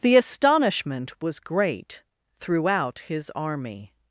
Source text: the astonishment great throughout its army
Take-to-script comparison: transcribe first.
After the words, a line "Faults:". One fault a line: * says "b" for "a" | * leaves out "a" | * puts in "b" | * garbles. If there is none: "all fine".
the astonishment was great throughout his army
Faults:
* puts in "was"
* says "his" for "its"